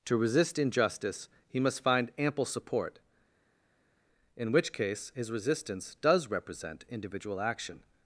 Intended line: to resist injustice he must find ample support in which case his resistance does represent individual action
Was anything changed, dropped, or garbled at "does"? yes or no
no